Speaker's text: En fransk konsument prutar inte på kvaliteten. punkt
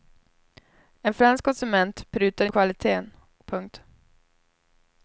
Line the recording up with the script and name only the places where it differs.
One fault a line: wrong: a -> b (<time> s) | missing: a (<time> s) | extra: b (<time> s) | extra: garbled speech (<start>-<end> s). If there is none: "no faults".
missing: inte (2.5 s)